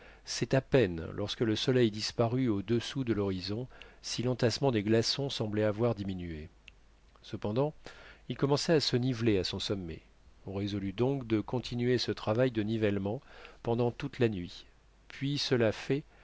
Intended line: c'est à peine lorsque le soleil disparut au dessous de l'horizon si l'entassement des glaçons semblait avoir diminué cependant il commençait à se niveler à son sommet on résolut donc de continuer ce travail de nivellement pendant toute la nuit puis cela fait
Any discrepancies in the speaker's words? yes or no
no